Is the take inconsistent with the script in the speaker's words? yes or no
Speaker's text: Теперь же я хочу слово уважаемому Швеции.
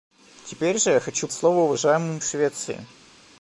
no